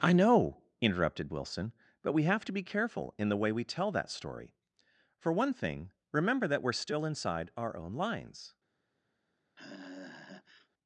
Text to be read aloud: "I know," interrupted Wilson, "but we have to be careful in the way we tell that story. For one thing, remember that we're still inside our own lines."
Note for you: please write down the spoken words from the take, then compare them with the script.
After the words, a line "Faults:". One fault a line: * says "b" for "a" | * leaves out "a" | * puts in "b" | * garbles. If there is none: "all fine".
"I know," interrupted Wilson, "but we have to be careful in the way we tell that story. For one thing, remember that we're still inside our own lines."
Faults:
all fine